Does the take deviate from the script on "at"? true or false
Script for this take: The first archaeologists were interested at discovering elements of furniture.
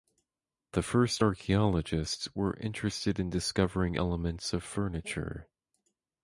true